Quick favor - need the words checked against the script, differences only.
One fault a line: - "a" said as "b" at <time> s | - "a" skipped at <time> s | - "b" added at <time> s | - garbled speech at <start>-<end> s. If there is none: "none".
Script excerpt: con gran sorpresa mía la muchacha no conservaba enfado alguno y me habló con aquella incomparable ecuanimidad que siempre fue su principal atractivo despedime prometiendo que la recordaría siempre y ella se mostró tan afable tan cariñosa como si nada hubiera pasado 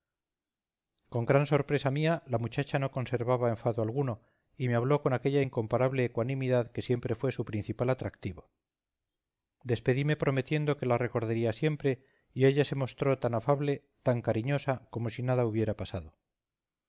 none